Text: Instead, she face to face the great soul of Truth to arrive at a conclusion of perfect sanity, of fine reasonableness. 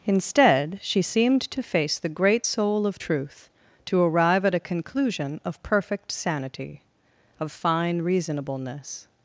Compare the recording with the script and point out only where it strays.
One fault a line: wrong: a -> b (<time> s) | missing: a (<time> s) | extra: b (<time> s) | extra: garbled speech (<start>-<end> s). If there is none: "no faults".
wrong: face -> seemed (1.0 s)